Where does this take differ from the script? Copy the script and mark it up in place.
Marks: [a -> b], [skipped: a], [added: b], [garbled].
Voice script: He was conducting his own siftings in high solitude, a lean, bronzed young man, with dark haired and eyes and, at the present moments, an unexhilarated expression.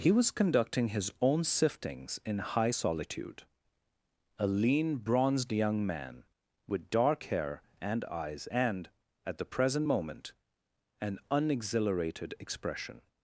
He was conducting his own siftings in high solitude, a lean, bronzed young man, with dark [haired -> hair] and eyes and, at the present [moments, -> moment] an unexhilarated expression.